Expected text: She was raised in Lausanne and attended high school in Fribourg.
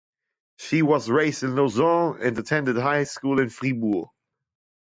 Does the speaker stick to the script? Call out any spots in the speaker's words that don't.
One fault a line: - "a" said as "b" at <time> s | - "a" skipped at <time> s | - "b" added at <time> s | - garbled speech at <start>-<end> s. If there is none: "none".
none